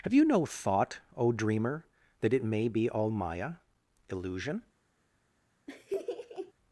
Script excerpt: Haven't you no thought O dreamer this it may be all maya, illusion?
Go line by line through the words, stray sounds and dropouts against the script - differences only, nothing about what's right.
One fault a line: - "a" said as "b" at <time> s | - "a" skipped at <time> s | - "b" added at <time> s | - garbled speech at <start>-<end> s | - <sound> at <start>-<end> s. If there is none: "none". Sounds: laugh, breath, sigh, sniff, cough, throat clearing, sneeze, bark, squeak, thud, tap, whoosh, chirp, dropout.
- "Haven't" said as "Have" at 0.0 s
- "this" said as "that" at 2.2 s
- laugh at 5.7-6.5 s